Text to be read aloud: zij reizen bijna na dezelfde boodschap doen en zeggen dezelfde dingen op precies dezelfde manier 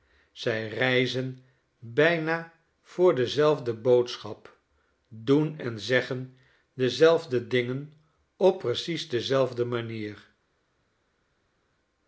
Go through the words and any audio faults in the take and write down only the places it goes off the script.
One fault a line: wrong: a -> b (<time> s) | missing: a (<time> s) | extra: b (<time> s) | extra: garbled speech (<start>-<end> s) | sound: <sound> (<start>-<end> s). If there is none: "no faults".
wrong: na -> voor (2.8 s)